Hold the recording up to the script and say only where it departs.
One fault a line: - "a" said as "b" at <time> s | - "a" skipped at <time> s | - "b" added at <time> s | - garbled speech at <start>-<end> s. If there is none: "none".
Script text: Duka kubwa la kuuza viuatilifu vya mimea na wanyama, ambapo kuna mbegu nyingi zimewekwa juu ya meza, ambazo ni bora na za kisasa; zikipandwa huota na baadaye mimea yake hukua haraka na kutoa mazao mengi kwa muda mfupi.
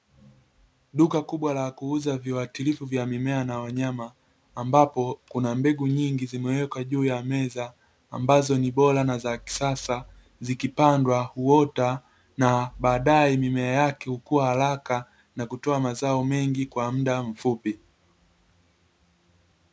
none